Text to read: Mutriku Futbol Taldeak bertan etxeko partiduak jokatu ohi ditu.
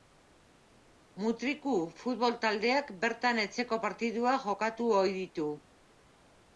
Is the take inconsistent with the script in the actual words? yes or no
no